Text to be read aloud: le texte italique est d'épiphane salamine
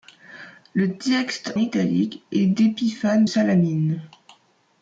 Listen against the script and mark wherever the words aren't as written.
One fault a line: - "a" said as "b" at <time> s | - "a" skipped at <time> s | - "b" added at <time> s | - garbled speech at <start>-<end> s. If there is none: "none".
none